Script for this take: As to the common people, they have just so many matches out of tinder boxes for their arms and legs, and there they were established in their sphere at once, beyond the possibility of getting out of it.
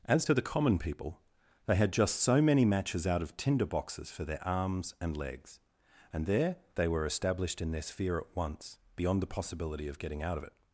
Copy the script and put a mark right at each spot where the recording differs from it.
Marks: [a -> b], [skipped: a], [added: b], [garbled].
As to the common people, they [have -> had] just so many matches out of tinder boxes for their arms and legs, and there they were established in their sphere at once, beyond the possibility of getting out of it.